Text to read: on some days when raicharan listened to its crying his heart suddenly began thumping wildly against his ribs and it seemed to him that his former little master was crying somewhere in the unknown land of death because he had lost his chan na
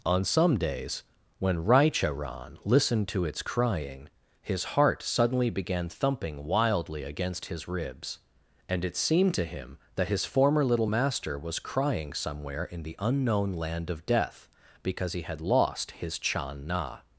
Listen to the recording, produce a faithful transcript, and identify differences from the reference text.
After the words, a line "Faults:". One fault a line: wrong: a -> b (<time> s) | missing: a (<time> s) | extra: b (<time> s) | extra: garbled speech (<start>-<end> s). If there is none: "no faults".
on some days when raicharan listened to its crying his heart suddenly began thumping wildly against his ribs and it seemed to him that his former little master was crying somewhere in the unknown land of death because he had lost his chan na
Faults:
no faults